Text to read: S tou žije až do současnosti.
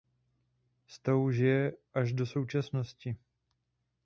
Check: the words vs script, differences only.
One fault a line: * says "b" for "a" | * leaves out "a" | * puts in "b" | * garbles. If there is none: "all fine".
all fine